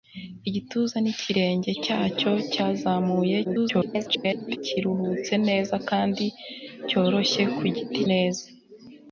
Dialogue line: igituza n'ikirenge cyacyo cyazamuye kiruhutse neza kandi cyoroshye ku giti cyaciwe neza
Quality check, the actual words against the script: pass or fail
fail